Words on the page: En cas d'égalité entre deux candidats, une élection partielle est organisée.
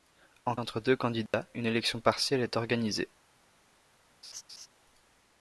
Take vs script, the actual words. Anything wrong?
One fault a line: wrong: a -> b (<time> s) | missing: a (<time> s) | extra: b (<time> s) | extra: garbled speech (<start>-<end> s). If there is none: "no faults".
missing: cas d'égalité (0.6 s)